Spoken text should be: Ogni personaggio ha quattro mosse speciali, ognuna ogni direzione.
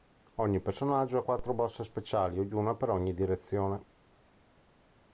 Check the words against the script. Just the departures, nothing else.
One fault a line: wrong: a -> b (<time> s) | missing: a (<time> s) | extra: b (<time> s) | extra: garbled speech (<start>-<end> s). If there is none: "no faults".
extra: per (2.7 s)